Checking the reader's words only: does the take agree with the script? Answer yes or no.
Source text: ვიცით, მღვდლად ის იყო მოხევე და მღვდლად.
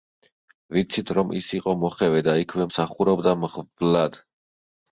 no